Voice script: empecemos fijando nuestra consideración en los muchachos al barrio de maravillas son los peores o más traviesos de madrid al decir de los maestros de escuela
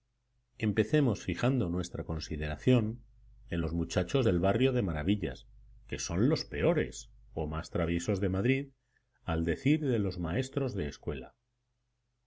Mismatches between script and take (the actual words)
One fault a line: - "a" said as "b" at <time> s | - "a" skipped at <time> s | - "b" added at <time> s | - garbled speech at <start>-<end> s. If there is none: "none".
- "al" said as "del" at 4.2 s
- "que" added at 5.9 s